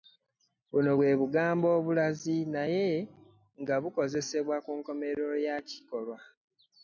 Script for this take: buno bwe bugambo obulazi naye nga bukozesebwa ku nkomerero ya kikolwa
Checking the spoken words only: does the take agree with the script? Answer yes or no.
yes